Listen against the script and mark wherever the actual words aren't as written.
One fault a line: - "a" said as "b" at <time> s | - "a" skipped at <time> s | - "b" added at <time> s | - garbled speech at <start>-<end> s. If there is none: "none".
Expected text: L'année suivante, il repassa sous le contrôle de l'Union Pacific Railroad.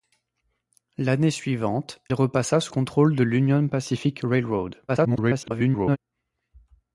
- "il" skipped at 2.0 s
- "le" skipped at 2.7 s
- garbled speech at 4.9-6.0 s